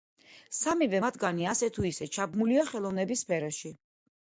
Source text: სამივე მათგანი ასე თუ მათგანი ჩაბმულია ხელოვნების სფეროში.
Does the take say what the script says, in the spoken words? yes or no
no